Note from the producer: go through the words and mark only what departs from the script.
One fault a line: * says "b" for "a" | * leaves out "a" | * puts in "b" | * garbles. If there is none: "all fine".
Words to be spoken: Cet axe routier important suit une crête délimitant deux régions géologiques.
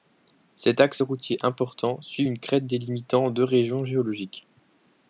all fine